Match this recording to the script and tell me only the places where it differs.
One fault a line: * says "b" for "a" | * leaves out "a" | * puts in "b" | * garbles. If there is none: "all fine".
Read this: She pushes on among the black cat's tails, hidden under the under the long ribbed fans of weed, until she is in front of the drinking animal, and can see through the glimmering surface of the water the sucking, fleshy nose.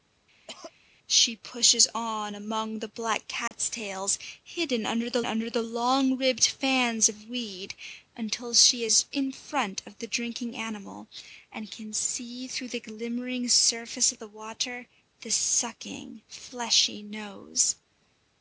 all fine